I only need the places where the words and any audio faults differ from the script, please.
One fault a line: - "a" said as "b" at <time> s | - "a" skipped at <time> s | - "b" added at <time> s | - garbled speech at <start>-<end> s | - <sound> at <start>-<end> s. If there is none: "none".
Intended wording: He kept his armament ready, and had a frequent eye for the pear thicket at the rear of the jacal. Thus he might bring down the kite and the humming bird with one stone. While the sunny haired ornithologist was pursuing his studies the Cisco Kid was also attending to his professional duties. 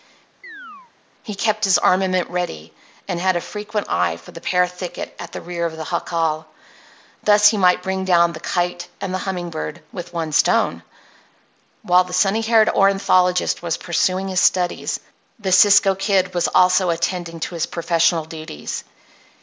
- chirp at 0.4-0.9 s